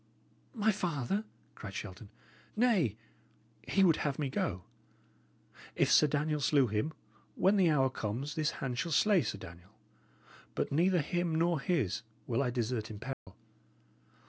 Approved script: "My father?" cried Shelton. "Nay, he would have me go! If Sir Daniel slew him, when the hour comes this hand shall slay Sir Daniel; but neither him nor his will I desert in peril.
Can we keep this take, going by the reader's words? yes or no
yes